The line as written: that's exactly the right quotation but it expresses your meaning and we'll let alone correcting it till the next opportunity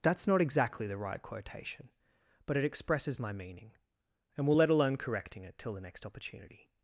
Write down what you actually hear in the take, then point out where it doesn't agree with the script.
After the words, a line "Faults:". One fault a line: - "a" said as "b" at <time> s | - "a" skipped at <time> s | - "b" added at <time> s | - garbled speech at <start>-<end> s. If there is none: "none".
that's not exactly the right quotation but it expresses my meaning and we'll let alone correcting it till the next opportunity
Faults:
- "not" added at 0.3 s
- "your" said as "my" at 3.2 s